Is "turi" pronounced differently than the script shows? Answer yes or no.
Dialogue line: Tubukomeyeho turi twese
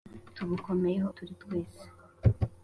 no